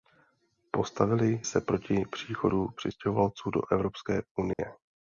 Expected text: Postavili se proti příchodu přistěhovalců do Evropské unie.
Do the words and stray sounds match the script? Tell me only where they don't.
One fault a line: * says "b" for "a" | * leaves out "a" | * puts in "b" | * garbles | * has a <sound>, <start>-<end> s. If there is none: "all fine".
* has a dropout, 4.5-4.6 s